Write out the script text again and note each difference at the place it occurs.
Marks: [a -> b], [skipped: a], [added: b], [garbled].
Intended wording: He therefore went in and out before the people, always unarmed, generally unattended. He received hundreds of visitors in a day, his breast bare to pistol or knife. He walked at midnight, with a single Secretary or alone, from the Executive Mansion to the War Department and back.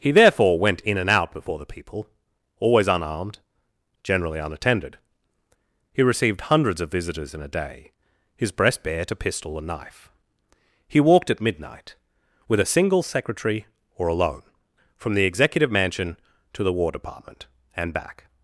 He therefore went in and out before the people, always unarmed, generally unattended. He received hundreds of visitors in a day, his breast bare to pistol [or -> and] knife. He walked at midnight, with a single Secretary or alone, from the Executive Mansion to the War Department and back.